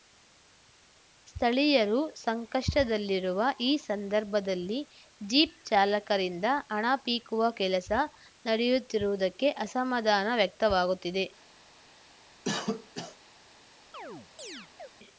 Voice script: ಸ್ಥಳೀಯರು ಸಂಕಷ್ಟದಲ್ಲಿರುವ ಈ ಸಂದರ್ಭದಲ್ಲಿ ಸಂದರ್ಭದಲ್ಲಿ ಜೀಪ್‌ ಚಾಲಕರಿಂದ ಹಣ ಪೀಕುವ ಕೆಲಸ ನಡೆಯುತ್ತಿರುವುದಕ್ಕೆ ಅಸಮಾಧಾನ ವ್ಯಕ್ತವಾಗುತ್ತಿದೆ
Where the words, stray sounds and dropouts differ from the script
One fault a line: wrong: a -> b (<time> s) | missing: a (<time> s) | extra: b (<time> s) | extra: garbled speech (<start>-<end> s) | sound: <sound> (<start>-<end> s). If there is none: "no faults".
missing: ಸಂದರ್ಭದಲ್ಲಿ (4.8 s)
sound: cough (12.4-13.2 s)
sound: chirp (13.9-14.9 s)